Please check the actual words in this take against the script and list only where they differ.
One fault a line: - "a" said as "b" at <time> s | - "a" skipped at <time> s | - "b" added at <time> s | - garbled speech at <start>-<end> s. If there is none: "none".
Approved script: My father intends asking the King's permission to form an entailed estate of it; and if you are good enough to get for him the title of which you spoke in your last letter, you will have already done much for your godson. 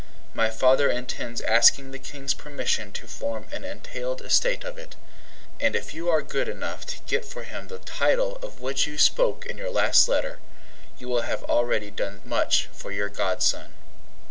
none